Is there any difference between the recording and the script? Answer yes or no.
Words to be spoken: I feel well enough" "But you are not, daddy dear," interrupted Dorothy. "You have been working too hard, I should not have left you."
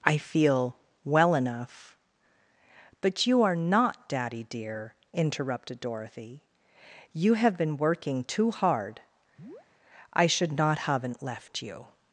yes